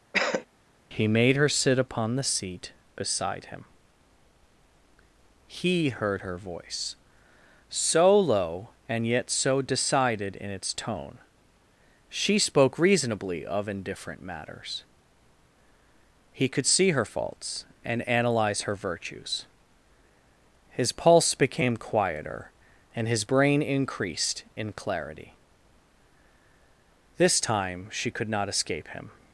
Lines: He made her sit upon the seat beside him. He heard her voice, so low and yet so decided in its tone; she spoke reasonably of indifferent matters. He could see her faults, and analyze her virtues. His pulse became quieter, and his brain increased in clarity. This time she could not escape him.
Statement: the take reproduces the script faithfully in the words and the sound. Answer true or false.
false